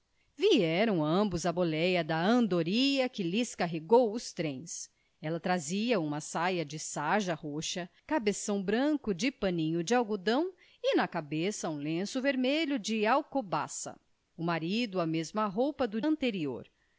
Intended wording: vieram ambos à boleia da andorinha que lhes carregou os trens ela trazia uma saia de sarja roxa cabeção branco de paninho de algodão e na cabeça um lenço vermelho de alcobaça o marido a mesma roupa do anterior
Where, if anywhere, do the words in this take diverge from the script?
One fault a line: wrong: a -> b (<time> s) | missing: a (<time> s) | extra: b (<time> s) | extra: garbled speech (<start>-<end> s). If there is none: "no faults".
no faults